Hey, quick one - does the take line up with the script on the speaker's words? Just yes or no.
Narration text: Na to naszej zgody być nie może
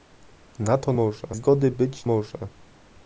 no